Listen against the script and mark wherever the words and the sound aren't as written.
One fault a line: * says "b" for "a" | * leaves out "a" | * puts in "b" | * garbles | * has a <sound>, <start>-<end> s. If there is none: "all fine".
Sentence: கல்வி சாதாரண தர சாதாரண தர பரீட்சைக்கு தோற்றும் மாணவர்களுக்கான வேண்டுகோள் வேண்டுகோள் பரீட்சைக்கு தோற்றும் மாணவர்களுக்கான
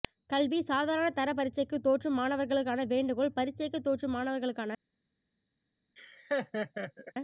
* leaves out "சாதாரண தர"
* leaves out "வேண்டுகோள்"
* has a laugh, 6.0-7.1 s